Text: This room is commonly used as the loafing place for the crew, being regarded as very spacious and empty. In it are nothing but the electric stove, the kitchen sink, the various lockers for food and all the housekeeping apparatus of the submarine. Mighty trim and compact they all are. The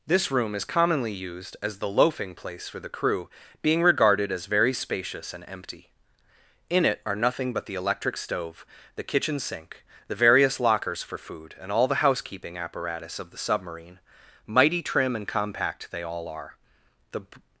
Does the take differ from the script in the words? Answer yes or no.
no